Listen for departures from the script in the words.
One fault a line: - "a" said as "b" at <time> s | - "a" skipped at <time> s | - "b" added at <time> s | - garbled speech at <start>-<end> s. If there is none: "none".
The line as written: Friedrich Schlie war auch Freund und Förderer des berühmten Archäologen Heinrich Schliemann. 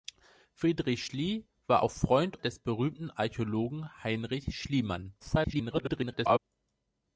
- "und Förderer" skipped at 2.4 s
- garbled speech at 5.2-6.4 s